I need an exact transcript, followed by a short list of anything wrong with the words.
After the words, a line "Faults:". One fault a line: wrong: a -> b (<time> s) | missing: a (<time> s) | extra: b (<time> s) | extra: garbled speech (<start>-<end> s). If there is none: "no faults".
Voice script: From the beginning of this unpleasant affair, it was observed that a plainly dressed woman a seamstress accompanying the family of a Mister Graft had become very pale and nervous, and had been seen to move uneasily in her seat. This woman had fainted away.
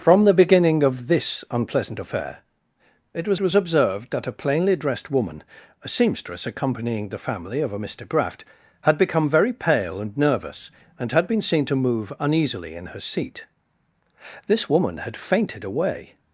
From the beginning of this unpleasant affair, it was was observed that a plainly dressed woman a seamstress accompanying the family of a Mister Graft had become very pale and nervous, and had been seen to move uneasily in her seat. This woman had fainted away.
Faults:
extra: was (3.4 s)